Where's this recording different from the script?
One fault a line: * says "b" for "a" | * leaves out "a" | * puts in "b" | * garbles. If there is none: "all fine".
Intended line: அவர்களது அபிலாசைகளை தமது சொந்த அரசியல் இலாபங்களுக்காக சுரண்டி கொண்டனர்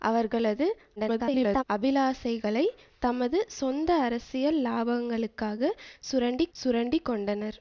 * garbles
* puts in "சுரண்டி"